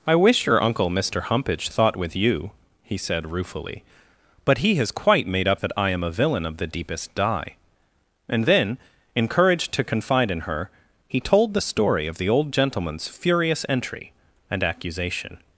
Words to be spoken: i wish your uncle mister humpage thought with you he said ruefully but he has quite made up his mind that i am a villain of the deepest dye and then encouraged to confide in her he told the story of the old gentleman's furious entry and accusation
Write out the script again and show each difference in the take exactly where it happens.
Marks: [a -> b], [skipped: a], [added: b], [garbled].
i wish your uncle mister humpage thought with you he said ruefully but he has quite made up [skipped: his mind] that i am a villain of the deepest dye and then encouraged to confide in her he told the story of the old gentleman's furious entry and accusation